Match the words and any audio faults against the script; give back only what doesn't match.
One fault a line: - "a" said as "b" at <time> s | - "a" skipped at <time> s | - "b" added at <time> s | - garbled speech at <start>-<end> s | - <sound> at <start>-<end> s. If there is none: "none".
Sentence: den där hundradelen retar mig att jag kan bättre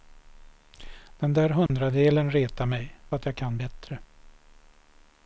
- dropout at 1.7-1.7 s